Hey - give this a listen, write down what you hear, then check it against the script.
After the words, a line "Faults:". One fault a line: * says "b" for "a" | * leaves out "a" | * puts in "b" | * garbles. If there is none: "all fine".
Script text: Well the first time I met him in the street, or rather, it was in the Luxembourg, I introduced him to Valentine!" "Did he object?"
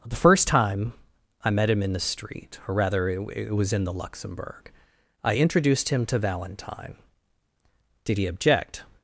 the first time I met him in the street, or rather, it it was in the Luxembourg, I introduced him to Valentine!" "Did he object?"
Faults:
* leaves out "Well"
* puts in "it"